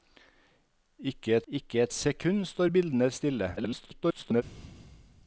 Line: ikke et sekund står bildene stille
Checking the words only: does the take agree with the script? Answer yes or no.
no